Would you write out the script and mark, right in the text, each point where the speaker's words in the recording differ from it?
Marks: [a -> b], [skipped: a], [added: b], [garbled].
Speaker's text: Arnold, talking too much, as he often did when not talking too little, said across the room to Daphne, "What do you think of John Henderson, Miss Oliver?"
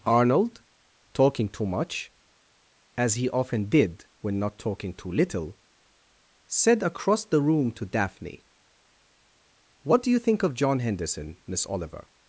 Arnold, talking too much, as he often did when not talking too little, said across the room to Daphne, "What do you think of John Henderson, Miss Oliver?"